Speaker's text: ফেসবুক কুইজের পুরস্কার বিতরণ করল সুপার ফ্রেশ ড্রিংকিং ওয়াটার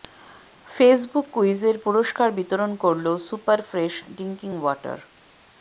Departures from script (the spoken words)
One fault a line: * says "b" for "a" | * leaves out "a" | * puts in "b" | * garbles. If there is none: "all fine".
all fine